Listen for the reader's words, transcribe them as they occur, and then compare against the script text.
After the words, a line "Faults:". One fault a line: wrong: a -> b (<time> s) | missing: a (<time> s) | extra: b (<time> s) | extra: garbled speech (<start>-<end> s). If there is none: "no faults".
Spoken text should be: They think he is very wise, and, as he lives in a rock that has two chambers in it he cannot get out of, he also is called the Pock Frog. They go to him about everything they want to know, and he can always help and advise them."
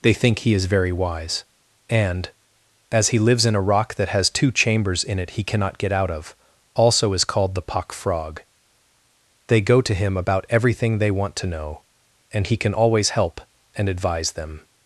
They think he is very wise, and, as he lives in a rock that has two chambers in it he cannot get out of, also is called the Pock Frog. They go to him about everything they want to know, and he can always help and advise them."
Faults:
missing: he (6.3 s)